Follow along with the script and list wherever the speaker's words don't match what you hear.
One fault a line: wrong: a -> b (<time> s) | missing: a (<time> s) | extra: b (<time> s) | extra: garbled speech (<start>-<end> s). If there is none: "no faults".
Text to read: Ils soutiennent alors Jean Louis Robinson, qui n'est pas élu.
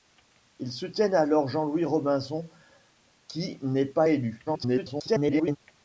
extra: garbled speech (4.5-5.6 s)